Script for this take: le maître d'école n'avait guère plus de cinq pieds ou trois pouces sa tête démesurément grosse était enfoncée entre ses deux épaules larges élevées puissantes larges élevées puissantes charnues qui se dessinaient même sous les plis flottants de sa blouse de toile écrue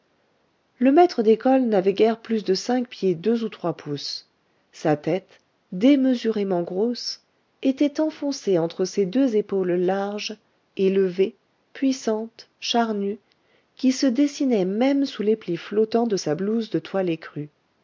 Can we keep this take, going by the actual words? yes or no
no